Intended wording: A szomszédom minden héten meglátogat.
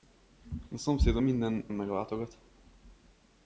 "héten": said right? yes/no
no